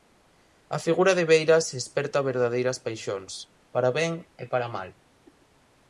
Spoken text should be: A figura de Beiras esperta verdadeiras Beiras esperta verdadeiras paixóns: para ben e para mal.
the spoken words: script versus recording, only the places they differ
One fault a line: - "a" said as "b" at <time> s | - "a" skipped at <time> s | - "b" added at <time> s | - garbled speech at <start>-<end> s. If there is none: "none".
- "Beiras esperta verdadeiras" skipped at 2.8 s